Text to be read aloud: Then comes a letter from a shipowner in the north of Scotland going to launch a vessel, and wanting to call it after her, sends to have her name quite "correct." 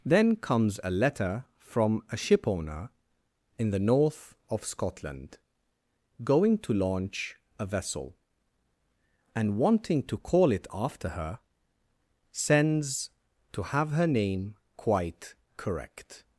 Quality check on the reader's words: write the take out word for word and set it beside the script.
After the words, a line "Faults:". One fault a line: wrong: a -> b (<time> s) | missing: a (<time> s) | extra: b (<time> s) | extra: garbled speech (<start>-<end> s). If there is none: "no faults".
Then comes a letter from a shipowner in the north of Scotland going to launch a vessel, and wanting to call it after her, sends to have her name quite "correct."
Faults:
no faults